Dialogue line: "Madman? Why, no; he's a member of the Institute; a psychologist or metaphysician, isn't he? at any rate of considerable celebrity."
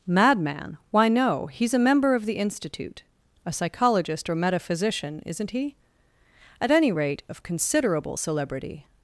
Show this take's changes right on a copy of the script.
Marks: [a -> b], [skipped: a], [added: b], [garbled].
"Madman? Why, no; he's a member of the Institute; a psychologist or metaphysician, isn't he? at any rate of considerable celebrity."